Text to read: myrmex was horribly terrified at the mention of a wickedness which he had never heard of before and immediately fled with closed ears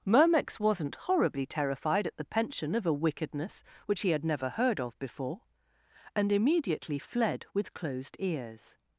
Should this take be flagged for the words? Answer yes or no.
yes